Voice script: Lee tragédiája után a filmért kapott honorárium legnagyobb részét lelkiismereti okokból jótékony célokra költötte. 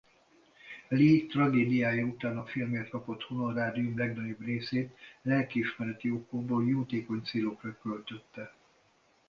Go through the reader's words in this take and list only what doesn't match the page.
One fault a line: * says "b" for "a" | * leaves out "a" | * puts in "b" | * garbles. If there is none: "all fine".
all fine